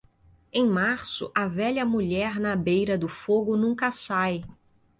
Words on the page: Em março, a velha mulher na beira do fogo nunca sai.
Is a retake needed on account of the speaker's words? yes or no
no